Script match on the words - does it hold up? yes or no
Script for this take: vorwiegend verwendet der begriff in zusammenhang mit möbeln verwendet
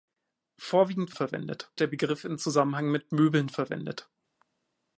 yes